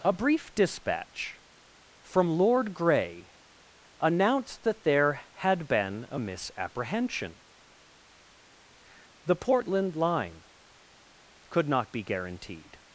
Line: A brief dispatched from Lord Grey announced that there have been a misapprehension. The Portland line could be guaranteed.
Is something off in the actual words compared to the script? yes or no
yes